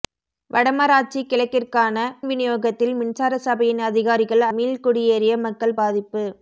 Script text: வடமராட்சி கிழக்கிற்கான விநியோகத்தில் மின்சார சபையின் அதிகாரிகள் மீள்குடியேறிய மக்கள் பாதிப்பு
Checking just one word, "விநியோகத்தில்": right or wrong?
right